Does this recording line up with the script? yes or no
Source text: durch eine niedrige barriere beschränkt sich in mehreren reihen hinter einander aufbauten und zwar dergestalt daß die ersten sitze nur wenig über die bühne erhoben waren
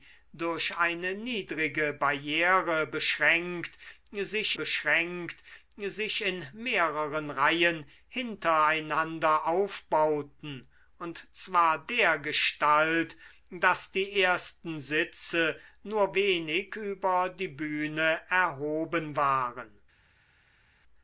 no